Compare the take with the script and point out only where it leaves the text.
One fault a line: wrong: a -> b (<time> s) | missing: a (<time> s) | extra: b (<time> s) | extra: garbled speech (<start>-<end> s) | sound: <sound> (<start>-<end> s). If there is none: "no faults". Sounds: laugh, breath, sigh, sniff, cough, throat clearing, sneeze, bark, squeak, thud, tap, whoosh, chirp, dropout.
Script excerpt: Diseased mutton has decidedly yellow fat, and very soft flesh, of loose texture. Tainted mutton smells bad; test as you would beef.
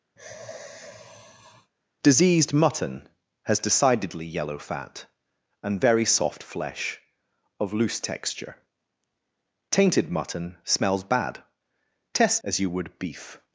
sound: sigh (0.2-1.7 s)